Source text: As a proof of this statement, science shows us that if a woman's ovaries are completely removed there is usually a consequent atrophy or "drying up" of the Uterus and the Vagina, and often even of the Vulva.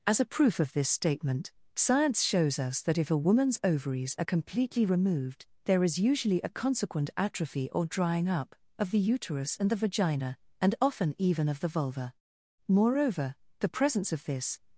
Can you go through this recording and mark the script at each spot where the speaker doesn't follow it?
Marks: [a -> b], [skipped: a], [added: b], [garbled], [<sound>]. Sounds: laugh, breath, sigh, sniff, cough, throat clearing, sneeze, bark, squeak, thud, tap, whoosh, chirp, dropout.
As a proof of this statement, science shows us that if a woman's ovaries are completely removed there is usually a consequent atrophy or "drying up" of the Uterus and the Vagina, and often even of the Vulva. [added: Moreover the presence of this]